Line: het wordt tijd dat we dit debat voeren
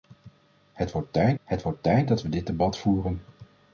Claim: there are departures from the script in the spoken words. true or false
true